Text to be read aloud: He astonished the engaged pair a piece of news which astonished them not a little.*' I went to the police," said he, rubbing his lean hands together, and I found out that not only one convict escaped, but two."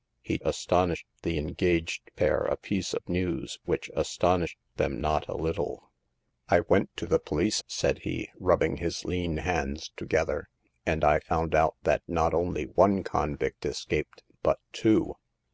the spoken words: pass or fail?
pass